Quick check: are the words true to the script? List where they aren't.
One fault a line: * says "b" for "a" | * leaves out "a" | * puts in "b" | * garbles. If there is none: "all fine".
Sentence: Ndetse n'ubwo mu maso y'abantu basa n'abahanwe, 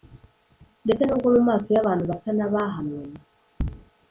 all fine